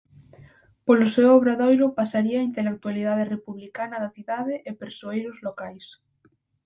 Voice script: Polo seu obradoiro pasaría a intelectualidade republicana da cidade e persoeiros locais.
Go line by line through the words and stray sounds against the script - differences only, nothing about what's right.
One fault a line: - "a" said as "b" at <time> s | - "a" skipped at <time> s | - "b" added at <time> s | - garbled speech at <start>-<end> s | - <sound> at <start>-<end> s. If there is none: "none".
none